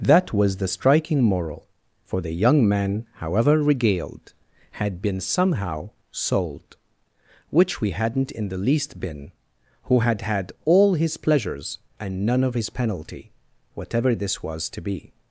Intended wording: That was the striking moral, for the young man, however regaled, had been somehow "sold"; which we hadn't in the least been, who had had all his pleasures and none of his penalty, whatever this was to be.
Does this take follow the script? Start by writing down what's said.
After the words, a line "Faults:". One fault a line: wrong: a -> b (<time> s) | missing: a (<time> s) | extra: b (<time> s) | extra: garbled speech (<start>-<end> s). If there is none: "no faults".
That was the striking moral, for the young man, however regaled, had been somehow "sold"; which we hadn't in the least been, who had had all his pleasures and none of his penalty, whatever this was to be.
Faults:
no faults